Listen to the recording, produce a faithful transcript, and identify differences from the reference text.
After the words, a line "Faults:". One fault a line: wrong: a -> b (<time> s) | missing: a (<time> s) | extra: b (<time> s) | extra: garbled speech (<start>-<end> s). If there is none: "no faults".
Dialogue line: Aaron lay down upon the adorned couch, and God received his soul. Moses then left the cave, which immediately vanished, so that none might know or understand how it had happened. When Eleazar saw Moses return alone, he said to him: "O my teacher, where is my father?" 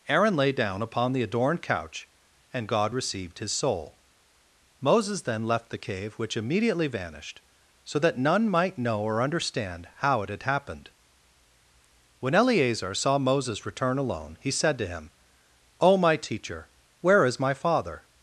Aaron lay down upon the adorned couch, and God received his soul. Moses then left the cave, which immediately vanished, so that none might know or understand how it had happened. When Eleazar saw Moses return alone, he said to him: "O my teacher, where is my father?"
Faults:
no faults